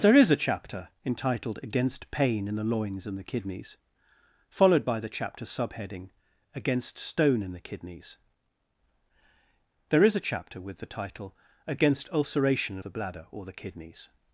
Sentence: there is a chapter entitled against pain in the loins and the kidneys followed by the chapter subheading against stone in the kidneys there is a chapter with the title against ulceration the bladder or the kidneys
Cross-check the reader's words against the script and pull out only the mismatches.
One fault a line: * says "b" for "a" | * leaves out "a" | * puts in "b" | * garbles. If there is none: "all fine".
all fine